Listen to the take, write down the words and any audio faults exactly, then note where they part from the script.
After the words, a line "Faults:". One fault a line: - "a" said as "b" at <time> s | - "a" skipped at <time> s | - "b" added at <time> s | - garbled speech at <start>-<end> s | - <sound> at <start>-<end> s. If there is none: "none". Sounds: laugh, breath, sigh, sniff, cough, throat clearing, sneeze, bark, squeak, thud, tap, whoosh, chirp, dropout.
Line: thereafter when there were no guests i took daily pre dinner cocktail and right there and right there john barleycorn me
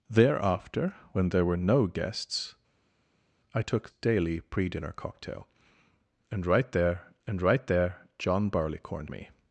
thereafter when there were no guests i took daily pre dinner cocktail and right there and right there john barleycorn me
Faults:
none